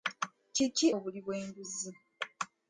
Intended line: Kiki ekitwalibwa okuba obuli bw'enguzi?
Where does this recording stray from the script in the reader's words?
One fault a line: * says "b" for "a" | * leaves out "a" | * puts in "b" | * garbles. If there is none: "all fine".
* leaves out "ekitwalibwa okuba"